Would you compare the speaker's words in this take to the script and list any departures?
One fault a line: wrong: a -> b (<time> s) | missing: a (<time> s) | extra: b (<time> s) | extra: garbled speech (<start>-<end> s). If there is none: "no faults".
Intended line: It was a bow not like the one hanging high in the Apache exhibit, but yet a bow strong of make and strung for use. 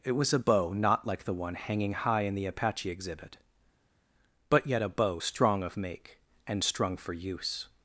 no faults